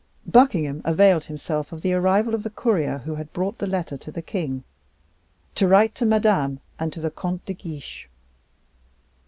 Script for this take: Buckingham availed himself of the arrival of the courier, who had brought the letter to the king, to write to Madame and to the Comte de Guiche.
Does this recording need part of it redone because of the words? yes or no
no